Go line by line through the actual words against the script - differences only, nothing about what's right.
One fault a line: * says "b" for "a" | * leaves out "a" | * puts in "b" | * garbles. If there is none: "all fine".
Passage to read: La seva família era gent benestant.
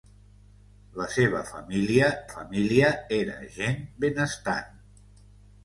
* puts in "família"